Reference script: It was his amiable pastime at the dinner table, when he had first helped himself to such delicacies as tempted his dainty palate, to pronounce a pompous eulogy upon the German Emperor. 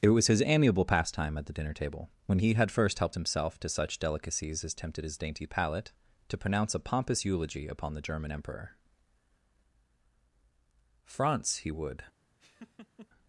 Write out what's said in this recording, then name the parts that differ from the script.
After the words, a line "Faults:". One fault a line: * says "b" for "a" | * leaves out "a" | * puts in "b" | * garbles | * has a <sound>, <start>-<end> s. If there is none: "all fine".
It was his amiable pastime at the dinner table, when he had first helped himself to such delicacies as tempted his dainty palate, to pronounce a pompous eulogy upon the German Emperor. France, he would
Faults:
* puts in "France he would"
* has a laugh, 12.4-13.1 s